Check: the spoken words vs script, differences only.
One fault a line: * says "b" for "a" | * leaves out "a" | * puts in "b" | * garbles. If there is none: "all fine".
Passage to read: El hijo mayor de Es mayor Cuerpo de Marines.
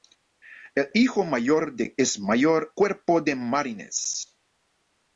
all fine